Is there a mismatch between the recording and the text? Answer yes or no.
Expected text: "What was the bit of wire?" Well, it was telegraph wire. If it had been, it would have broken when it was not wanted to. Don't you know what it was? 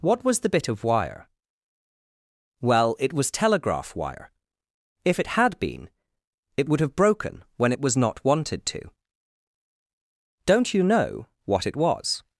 no